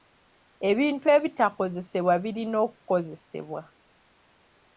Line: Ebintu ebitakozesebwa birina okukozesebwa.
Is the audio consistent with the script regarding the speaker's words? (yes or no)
yes